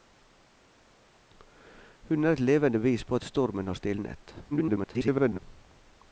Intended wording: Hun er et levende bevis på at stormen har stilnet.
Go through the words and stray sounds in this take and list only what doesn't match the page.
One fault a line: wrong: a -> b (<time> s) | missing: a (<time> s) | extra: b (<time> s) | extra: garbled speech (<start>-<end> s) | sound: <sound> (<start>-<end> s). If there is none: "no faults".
extra: garbled speech (4.5-5.4 s)